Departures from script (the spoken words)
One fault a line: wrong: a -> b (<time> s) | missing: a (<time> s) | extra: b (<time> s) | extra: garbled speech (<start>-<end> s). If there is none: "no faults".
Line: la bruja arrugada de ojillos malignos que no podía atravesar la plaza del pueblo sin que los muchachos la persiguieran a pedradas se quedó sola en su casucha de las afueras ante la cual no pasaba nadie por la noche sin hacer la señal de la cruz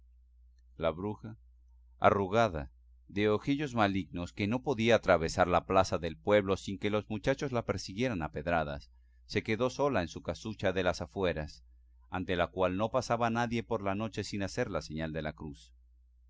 no faults